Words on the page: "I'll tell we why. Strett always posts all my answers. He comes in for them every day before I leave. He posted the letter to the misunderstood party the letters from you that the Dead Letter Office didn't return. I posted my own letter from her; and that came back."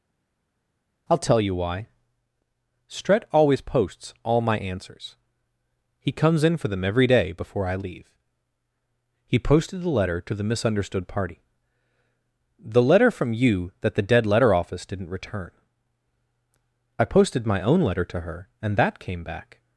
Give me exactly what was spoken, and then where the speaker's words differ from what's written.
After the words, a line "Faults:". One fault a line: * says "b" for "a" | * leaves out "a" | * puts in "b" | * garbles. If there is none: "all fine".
"I'll tell you why. Strett always posts all my answers. He comes in for them every day before I leave. He posted the letter to the misunderstood party the letter from you that the Dead Letter Office didn't return. I posted my own letter to her; and that came back."
Faults:
* says "you" for "we"
* says "letter" for "letters"
* says "to" for "from"